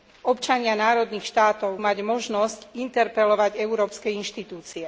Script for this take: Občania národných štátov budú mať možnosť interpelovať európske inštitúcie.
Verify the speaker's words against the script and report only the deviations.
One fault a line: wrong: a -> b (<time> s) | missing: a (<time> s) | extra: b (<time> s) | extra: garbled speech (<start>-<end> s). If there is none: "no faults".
missing: budú (1.8 s)